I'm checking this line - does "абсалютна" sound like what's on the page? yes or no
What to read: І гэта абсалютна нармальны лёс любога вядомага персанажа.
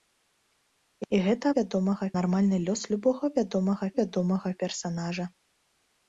no